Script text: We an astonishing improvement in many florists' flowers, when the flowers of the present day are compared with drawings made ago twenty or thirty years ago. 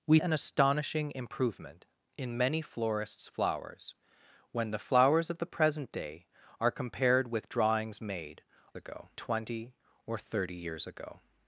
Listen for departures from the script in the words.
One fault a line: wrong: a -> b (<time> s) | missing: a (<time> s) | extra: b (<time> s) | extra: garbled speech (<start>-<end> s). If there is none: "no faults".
no faults